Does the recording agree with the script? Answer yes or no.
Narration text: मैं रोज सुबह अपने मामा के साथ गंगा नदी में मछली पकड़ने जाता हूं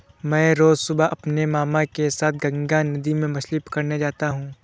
yes